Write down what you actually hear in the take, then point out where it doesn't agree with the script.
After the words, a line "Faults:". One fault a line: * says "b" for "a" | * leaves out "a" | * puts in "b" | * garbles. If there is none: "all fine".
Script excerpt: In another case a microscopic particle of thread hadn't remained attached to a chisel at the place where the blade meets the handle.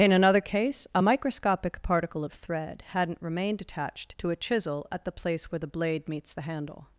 In another case a microscopic particle of thread hadn't remained attached to a chisel at the place where the blade meets the handle.
Faults:
all fine